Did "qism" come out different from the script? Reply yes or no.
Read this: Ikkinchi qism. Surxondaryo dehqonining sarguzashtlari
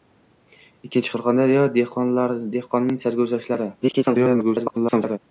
yes